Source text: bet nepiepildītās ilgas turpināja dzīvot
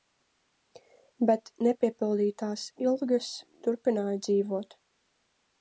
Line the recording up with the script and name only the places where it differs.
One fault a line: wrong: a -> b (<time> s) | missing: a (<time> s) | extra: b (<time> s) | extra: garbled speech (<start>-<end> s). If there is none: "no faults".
no faults